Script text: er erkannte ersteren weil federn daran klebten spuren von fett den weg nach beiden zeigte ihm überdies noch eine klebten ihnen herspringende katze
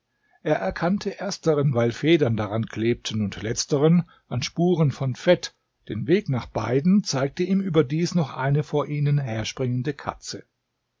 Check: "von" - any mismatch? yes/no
no